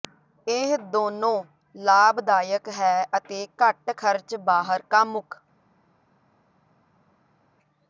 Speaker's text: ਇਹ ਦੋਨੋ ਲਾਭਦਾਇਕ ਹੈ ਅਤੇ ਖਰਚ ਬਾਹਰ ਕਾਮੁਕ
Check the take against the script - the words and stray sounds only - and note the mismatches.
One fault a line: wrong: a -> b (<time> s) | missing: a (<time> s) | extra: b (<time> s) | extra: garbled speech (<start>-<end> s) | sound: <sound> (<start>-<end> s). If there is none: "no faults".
extra: ਘੱਟ (3.6 s)